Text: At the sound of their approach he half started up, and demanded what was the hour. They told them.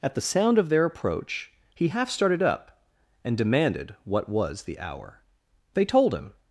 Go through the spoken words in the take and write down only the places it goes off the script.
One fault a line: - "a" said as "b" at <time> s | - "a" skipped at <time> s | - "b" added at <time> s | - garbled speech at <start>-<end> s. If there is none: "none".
- "them" said as "him" at 6.1 s